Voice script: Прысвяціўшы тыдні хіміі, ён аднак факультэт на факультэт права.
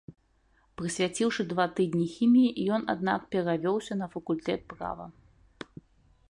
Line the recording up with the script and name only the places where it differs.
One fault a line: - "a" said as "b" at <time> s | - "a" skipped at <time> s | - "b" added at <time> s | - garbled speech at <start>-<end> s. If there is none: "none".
- "два" added at 1.5 s
- "факультэт" said as "перавёўся" at 3.4 s